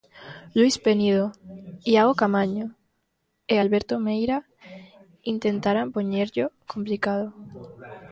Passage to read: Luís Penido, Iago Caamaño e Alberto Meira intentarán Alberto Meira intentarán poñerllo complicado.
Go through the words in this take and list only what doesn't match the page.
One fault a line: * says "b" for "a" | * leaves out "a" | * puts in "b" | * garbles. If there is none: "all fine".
* leaves out "Alberto Meira intentarán"